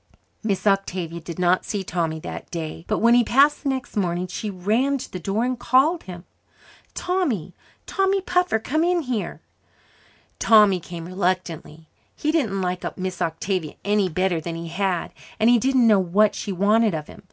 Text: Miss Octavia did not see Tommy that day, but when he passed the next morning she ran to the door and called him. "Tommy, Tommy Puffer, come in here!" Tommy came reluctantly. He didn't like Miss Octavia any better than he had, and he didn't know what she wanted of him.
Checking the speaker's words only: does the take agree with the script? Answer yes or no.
yes